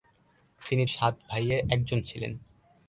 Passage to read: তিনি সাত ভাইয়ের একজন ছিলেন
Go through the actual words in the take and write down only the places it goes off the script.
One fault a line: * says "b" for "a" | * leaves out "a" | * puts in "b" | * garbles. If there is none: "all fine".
all fine